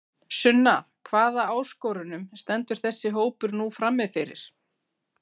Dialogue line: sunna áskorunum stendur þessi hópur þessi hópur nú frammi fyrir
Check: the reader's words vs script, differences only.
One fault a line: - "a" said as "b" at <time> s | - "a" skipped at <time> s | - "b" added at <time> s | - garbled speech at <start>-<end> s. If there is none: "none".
- "hvaða" added at 1.1 s
- "þessi hópur" skipped at 3.6 s